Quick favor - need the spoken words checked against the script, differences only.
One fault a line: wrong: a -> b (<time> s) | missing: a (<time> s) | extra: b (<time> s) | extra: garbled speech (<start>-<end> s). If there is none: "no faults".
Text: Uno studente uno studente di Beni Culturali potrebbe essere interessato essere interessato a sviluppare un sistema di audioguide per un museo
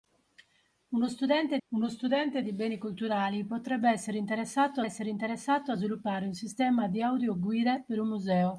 no faults